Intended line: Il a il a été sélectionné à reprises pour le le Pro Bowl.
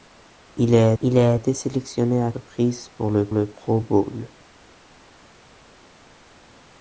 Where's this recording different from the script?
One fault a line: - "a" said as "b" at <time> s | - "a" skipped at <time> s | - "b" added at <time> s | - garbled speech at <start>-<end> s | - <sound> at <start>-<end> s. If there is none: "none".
none